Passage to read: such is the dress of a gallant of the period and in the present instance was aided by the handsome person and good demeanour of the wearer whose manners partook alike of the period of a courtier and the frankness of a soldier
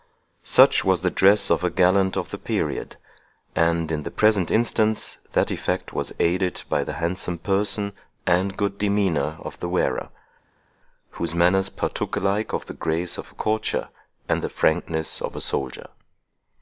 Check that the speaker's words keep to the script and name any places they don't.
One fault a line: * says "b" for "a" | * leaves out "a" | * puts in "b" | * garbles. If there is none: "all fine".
* says "was" for "is"
* puts in "that effect"
* says "grace" for "period"